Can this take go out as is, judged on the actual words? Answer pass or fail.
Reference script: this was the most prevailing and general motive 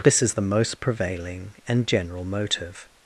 fail